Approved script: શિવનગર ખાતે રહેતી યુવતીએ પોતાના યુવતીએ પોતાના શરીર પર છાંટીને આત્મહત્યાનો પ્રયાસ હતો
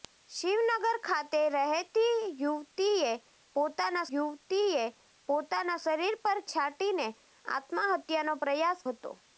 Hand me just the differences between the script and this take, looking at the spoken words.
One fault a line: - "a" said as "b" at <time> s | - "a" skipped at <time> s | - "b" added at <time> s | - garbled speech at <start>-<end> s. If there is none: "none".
none